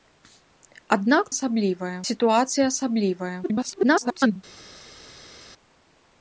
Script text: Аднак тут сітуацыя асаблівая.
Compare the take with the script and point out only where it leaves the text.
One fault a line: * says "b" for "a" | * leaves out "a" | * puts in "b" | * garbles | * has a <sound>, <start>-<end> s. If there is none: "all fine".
* says "асаблівая" for "тут"
* garbles